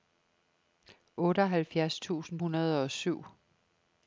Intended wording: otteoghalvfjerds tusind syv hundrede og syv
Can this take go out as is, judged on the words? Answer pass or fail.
fail